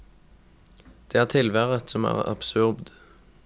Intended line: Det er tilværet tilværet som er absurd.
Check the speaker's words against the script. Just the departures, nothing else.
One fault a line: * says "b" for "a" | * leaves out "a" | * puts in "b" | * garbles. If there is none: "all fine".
* leaves out "tilværet"